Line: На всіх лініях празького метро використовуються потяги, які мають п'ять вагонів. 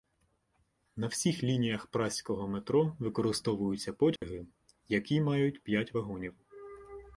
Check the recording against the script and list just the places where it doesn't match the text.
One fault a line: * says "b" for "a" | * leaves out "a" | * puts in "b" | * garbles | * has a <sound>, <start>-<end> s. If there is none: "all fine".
* has a dropout, 4.2-4.2 s